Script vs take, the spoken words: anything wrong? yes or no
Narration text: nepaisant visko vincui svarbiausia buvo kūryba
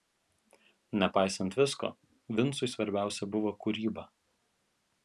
no